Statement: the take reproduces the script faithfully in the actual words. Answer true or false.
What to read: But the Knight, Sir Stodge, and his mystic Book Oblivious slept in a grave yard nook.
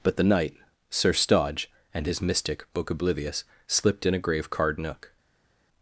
false